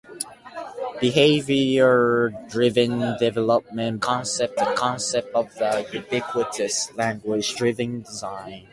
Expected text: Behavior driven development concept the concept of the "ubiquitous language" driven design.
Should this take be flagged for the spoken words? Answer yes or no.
no